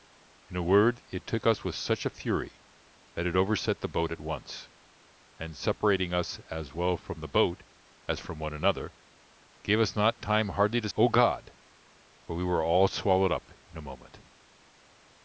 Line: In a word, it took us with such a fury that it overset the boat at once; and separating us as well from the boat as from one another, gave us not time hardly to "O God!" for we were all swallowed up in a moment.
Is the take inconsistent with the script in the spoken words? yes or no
no